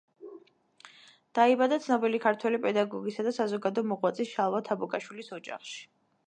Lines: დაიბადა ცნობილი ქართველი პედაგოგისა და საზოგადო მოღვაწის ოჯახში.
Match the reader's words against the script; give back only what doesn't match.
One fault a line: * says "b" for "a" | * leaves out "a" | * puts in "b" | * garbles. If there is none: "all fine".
* puts in "შალვა თაბუკაშვილის"